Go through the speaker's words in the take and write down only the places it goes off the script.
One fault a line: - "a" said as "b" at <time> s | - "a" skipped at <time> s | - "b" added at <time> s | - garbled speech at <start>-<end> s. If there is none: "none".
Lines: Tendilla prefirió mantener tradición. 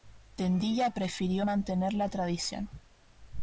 - "la" added at 1.9 s